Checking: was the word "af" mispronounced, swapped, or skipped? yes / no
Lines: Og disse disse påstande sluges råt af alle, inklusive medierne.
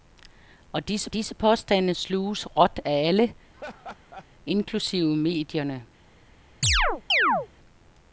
no